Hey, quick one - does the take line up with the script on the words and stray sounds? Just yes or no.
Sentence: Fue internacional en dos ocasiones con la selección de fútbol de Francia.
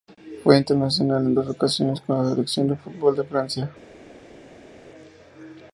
yes